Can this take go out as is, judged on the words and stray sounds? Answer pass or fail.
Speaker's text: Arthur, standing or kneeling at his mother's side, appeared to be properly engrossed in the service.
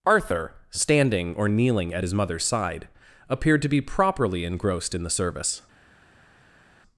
pass